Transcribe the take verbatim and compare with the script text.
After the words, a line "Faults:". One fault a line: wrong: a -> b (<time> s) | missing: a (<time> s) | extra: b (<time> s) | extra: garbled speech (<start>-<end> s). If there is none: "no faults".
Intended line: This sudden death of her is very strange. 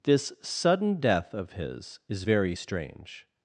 This sudden death of his is very strange.
Faults:
wrong: her -> his (1.5 s)